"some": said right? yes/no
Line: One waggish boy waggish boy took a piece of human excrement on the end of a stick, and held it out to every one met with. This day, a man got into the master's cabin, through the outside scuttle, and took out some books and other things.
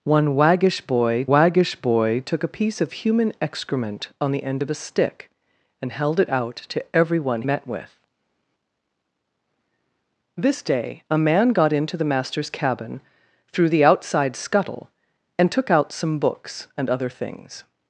yes